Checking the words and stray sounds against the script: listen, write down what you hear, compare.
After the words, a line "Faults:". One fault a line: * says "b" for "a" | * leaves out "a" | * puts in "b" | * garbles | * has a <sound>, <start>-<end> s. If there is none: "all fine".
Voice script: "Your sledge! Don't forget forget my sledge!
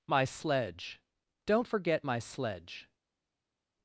"My sledge! Don't forget my sledge!
Faults:
* says "My" for "Your"
* leaves out "forget"